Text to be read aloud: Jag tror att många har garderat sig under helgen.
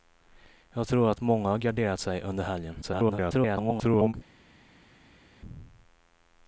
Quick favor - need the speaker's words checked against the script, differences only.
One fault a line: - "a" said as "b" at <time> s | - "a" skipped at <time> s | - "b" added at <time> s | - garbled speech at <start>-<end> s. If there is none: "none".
- garbled speech at 2.8-4.1 s